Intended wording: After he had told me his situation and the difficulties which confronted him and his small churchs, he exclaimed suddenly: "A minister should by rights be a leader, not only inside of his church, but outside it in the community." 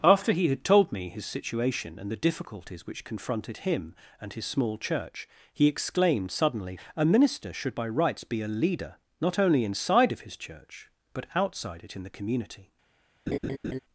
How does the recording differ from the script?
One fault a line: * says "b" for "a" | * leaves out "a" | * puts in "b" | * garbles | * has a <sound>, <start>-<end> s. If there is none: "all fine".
* says "church" for "churchs"
* has a laugh, 13.3-13.8 s